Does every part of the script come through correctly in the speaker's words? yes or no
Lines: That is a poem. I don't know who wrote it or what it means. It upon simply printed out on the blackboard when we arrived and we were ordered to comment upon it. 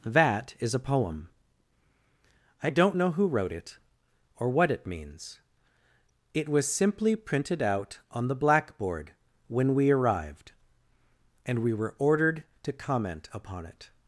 no